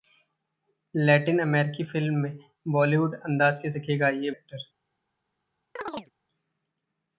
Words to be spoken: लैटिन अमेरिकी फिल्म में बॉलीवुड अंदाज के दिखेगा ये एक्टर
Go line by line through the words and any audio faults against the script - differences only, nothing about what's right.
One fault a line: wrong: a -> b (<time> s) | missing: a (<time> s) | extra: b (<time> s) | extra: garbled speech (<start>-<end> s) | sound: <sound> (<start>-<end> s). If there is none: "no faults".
sound: chirp (5.8-6.1 s)